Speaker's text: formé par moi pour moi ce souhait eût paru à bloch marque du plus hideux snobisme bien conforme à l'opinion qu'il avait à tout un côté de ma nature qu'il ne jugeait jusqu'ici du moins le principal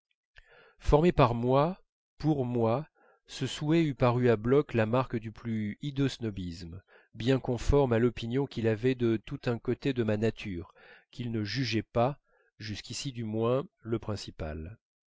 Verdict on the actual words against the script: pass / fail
fail